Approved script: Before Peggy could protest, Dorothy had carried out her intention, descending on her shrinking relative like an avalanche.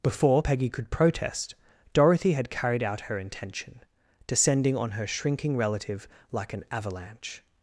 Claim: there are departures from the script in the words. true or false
false